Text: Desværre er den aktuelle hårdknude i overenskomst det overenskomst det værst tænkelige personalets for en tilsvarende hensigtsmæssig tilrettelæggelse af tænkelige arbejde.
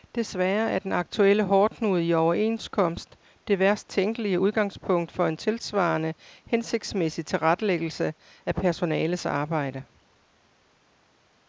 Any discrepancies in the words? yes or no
yes